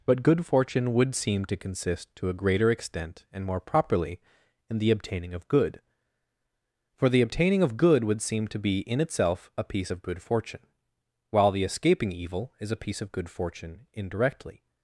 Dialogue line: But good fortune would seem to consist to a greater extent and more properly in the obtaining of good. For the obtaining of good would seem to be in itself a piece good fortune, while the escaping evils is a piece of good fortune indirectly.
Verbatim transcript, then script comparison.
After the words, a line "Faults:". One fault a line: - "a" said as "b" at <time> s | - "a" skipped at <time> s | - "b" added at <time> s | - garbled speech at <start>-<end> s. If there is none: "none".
But good fortune would seem to consist to a greater extent and more properly in the obtaining of good. For the obtaining of good would seem to be in itself a piece of good fortune, while the escaping evil is a piece of good fortune indirectly.
Faults:
- "of" added at 9.9 s
- "evils" said as "evil" at 12.1 s